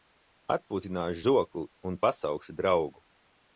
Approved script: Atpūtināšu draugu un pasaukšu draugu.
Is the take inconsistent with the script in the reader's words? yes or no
yes